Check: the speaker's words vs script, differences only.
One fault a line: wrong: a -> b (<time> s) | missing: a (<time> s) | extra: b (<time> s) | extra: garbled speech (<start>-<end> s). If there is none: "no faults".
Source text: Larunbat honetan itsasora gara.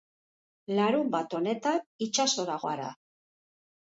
no faults